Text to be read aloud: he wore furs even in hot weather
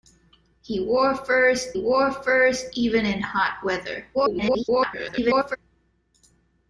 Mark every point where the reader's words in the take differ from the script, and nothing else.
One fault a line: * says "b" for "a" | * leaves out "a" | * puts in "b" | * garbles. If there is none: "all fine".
* puts in "wore furs"
* garbles